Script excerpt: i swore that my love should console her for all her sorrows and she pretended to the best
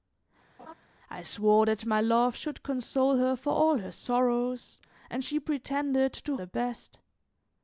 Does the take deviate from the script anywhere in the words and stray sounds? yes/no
yes